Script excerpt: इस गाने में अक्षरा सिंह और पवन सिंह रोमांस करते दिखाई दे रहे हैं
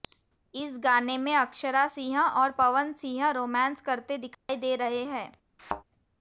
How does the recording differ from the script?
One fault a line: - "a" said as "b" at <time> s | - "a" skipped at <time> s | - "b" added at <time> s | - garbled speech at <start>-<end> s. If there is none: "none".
none